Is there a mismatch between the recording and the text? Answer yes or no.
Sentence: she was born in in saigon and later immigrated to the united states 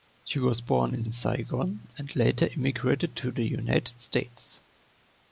no